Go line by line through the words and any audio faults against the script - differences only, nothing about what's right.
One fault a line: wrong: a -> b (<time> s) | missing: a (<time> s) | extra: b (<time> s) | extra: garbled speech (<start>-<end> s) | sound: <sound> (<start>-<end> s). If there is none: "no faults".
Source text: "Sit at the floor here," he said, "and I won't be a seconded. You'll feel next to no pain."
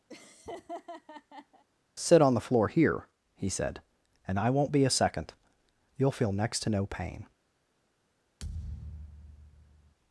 sound: laugh (0.1-1.6 s)
wrong: at -> on (2.2 s)
wrong: seconded -> second (4.9 s)
sound: thud (8.4-9.9 s)